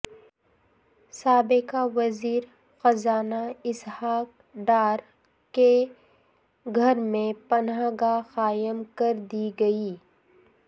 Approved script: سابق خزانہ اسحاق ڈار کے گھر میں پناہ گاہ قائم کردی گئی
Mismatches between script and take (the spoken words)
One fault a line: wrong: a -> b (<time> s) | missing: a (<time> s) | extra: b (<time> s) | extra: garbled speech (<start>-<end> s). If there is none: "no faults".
extra: وزیر (1.9 s)